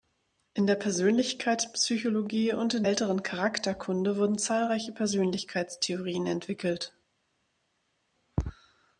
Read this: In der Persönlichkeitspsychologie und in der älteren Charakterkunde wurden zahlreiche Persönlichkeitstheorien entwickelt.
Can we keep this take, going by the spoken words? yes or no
no